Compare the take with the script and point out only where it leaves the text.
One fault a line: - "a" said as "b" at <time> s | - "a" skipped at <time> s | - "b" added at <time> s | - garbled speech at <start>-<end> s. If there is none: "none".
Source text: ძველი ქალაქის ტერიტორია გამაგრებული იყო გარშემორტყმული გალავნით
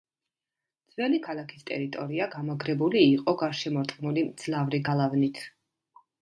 - "მძლავრი" added at 4.3 s